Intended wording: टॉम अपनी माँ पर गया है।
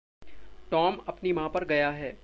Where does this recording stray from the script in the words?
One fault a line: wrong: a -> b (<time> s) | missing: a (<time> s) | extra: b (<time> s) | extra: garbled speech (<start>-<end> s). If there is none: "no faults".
no faults